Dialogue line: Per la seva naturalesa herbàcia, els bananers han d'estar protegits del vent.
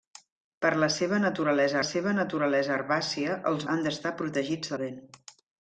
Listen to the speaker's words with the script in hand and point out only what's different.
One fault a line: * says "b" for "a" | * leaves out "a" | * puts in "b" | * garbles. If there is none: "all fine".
* puts in "seva naturalesa"
* leaves out "bananers"
* leaves out "del"